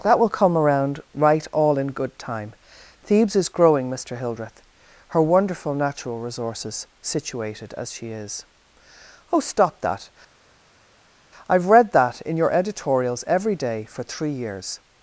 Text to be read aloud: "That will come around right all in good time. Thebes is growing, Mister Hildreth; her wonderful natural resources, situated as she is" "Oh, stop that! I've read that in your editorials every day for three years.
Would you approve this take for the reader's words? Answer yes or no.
yes